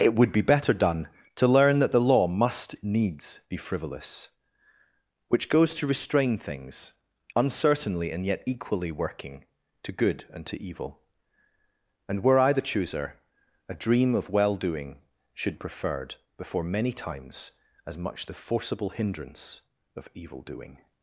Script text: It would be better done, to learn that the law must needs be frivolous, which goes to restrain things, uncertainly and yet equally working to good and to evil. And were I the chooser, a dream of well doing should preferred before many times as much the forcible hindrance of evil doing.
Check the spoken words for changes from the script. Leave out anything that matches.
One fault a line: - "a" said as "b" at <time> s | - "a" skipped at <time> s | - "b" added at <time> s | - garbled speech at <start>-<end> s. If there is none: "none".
none